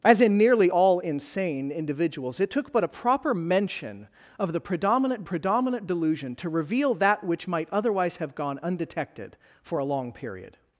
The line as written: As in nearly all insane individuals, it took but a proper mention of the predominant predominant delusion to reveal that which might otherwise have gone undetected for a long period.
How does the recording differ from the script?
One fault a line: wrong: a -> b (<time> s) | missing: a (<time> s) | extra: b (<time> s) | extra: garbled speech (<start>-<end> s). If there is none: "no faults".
no faults